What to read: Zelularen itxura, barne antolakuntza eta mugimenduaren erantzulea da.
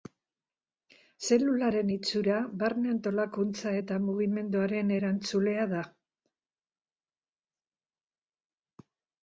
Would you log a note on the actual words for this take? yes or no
no